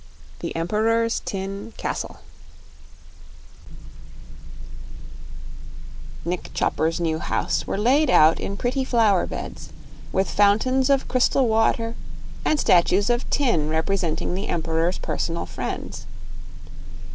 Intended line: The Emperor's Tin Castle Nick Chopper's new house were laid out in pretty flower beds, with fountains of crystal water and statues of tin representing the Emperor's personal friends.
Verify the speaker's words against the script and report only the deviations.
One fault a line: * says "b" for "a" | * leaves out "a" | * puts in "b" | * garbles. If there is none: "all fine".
all fine